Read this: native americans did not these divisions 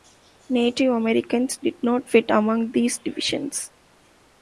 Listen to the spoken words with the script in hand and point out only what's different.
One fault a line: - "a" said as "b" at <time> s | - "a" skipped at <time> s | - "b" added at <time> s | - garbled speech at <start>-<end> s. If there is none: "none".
- "fit among" added at 2.1 s